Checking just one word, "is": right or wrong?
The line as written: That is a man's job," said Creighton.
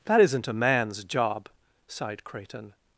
wrong